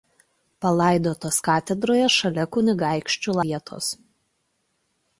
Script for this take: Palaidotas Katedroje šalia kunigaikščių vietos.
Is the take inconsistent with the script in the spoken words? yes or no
no